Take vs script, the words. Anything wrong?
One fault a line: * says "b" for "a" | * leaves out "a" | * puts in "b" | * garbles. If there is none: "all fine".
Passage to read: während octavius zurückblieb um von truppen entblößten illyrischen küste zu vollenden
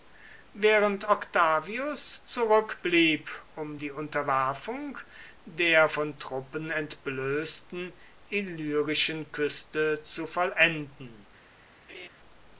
* puts in "die unterwerfung der"